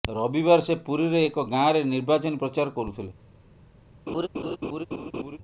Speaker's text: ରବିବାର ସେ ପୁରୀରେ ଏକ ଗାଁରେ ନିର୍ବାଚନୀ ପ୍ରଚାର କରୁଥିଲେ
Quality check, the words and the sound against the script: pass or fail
fail